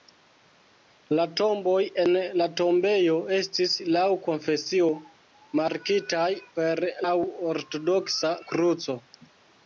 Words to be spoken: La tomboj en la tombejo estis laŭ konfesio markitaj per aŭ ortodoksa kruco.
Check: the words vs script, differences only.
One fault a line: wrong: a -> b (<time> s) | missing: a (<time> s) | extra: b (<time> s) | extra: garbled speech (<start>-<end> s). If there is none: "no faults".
no faults